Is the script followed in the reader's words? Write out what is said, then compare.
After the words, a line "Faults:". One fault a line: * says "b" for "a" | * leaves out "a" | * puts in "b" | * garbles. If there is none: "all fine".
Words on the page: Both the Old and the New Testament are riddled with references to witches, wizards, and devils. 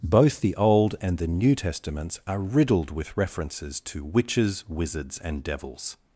Both the Old and the New Testaments are riddled with references to witches, wizards, and devils.
Faults:
* says "Testaments" for "Testament"